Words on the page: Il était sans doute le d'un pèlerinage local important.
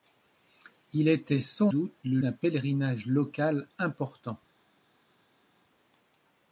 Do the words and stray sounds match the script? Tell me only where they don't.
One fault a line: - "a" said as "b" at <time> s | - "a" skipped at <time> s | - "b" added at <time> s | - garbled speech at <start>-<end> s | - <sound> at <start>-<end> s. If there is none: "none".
none